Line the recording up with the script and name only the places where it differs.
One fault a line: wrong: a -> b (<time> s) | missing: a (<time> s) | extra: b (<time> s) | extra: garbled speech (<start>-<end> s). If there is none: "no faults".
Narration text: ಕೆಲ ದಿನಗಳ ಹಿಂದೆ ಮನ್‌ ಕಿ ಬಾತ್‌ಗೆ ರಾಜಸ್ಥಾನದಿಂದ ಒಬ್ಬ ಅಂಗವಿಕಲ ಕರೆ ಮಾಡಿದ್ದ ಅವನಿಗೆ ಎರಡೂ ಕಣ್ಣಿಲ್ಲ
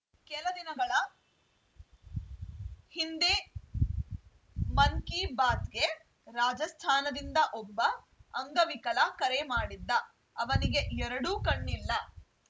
no faults